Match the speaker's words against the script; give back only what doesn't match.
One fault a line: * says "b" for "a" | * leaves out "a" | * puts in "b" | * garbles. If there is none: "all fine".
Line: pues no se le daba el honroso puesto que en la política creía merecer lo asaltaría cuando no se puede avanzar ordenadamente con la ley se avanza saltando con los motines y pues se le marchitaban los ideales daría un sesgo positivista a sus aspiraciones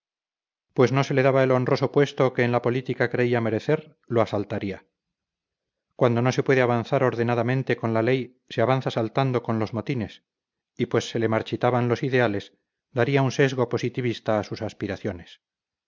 all fine